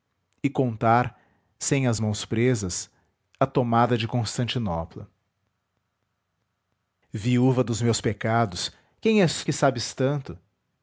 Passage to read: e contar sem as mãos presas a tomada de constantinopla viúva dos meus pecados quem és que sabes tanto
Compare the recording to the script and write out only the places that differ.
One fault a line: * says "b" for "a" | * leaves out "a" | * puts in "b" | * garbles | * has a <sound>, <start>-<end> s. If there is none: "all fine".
all fine